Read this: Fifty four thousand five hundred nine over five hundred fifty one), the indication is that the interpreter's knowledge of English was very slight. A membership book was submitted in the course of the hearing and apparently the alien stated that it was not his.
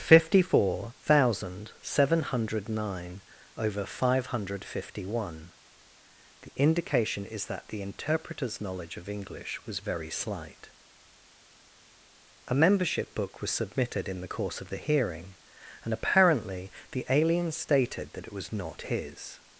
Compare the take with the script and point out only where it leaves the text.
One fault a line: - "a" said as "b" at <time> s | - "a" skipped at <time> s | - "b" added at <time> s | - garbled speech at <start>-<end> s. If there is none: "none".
- "five" said as "seven" at 1.8 s